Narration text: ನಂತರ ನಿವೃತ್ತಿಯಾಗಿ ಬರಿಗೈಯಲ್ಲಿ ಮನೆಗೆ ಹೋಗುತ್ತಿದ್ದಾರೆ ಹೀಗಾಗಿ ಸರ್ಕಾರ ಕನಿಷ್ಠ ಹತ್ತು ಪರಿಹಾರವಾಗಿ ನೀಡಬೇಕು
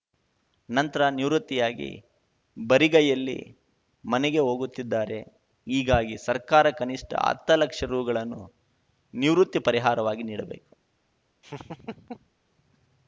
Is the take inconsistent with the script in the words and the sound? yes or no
yes